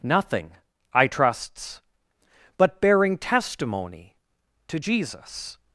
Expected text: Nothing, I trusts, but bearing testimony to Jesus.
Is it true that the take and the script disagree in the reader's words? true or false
false